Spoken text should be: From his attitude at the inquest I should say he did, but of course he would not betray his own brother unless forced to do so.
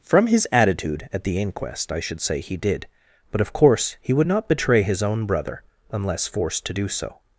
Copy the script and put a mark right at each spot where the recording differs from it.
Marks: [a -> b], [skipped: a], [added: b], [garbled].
From his attitude at the inquest I should say he did, but of course he would not betray his own brother unless forced to do so.